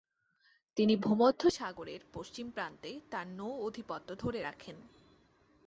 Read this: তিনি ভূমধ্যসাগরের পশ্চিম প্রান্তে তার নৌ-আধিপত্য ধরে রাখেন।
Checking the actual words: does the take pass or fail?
pass